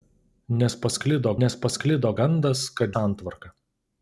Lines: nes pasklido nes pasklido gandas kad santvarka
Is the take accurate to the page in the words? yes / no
yes